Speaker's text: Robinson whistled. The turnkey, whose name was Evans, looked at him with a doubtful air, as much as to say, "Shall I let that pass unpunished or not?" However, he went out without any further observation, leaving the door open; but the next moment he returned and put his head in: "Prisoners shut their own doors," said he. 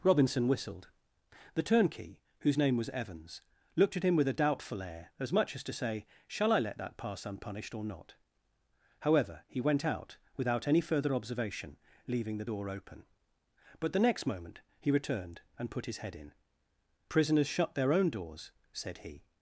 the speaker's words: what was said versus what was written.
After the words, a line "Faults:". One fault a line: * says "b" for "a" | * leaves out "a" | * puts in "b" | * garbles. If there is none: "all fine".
Robinson whistled. The turnkey, whose name was Evans, looked at him with a doubtful air, as much as to say, "Shall I let that pass unpunished or not?" However, he went out without any further observation, leaving the door open; but the next moment he returned and put his head in: "Prisoners shut their own doors," said he.
Faults:
all fine